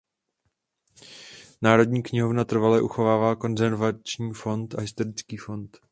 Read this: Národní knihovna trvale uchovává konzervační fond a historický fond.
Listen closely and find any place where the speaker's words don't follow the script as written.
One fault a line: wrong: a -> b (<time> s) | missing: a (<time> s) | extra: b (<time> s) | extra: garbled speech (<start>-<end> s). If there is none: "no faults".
no faults